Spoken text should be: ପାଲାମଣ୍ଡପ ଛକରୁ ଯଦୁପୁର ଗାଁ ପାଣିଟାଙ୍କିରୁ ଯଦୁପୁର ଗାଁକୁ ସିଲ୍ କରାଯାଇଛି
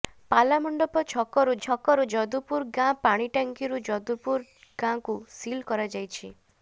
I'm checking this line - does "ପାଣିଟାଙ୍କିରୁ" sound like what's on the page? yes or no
yes